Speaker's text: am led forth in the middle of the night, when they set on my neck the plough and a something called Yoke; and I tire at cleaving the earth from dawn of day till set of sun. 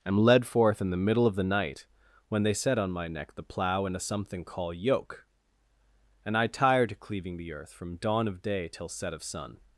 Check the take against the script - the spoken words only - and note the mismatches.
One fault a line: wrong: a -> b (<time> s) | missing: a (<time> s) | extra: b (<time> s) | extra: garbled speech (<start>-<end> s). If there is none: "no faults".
wrong: called -> call (4.4 s)
wrong: at -> to (6.9 s)